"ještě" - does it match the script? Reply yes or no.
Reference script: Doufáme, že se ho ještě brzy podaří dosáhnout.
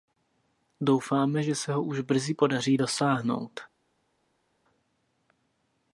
no